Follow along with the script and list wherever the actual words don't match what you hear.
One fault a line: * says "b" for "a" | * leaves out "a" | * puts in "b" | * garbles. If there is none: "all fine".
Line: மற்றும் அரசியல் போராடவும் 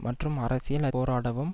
all fine